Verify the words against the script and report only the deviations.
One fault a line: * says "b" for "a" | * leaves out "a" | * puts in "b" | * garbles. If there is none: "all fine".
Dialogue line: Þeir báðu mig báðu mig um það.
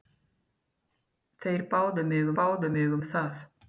all fine